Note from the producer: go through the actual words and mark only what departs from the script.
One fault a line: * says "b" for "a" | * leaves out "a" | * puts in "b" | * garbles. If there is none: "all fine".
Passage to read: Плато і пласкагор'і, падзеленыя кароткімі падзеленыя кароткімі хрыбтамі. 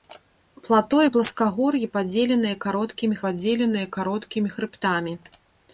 all fine